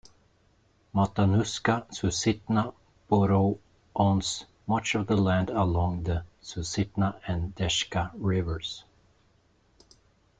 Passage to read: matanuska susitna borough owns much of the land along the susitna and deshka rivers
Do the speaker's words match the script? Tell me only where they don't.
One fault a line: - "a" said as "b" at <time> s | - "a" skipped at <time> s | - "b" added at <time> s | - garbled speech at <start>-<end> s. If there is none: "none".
none